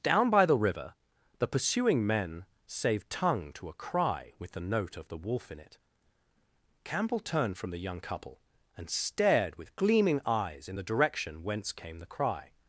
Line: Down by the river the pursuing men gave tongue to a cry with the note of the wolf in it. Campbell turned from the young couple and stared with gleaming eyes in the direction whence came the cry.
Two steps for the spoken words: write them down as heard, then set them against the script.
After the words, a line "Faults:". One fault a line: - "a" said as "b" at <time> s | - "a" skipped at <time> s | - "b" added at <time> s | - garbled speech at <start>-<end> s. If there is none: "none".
Down by the river the pursuing men save tongue to a cry with the note of the wolf in it. Campbell turned from the young couple and stared with gleaming eyes in the direction whence came the cry.
Faults:
- "gave" said as "save" at 2.6 s